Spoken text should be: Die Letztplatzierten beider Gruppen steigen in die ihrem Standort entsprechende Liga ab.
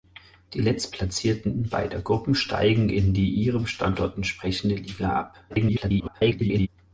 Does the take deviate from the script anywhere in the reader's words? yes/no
yes